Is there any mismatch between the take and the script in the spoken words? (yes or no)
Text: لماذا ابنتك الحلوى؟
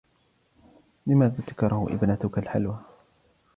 yes